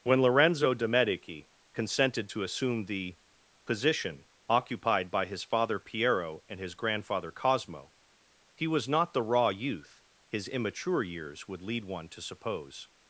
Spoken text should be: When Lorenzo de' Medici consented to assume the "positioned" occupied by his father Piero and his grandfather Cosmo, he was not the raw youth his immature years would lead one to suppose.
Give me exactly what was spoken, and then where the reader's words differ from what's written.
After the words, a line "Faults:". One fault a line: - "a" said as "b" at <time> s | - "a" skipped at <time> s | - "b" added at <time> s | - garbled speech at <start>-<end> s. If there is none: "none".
When Lorenzo de' Medici consented to assume the "position" occupied by his father Piero and his grandfather Cosmo, he was not the raw youth his immature years would lead one to suppose.
Faults:
- "positioned" said as "position" at 3.7 s